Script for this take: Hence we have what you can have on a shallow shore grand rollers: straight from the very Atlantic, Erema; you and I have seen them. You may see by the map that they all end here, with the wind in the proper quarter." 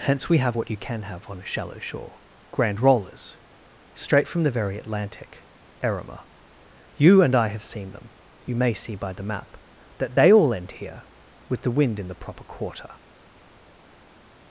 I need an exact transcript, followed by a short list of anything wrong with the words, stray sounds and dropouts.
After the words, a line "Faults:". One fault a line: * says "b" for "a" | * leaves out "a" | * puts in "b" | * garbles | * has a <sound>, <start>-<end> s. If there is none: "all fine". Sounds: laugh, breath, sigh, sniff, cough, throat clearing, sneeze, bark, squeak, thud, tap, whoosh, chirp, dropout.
Hence we have what you can have on a shallow shore grand rollers: straight from the very Atlantic, Erema; you and I have seen them. You may see by the map that they all end here, with the wind in the proper quarter."
Faults:
all fine